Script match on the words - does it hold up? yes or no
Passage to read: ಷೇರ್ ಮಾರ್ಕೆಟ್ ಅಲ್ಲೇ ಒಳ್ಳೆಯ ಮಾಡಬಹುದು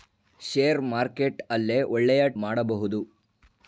yes